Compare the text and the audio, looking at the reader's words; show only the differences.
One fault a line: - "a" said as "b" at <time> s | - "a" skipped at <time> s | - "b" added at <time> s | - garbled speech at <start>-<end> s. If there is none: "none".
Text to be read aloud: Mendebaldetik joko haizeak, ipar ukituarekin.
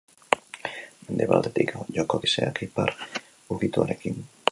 none